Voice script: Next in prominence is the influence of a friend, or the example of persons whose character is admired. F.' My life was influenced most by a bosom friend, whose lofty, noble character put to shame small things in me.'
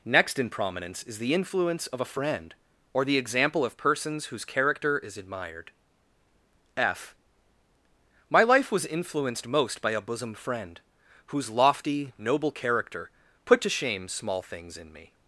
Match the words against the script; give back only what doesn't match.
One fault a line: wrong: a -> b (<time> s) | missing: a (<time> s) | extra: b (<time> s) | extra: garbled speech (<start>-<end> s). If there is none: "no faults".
no faults